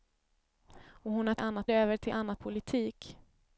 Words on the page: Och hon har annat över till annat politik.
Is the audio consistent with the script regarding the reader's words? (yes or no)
yes